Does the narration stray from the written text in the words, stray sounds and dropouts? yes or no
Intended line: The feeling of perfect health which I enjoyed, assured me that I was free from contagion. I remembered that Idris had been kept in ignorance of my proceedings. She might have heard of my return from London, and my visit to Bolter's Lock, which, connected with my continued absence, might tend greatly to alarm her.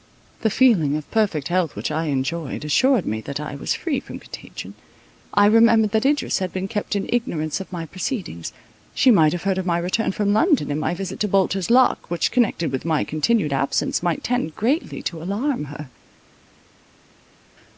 no